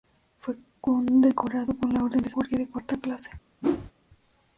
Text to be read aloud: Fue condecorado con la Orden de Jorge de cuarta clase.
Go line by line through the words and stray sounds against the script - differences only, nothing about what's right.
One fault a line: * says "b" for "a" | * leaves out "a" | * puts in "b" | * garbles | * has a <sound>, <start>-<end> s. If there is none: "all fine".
* has a whoosh, 3.6-3.9 s